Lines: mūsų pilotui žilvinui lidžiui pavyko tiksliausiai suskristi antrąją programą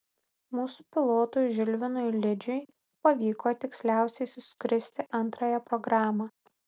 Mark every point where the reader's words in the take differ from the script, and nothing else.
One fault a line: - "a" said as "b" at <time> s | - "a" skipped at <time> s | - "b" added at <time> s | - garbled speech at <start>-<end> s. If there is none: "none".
none